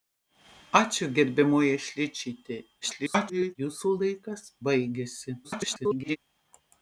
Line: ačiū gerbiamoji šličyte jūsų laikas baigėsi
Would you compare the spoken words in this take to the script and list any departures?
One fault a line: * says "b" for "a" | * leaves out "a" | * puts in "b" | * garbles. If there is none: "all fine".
* garbles
* garbles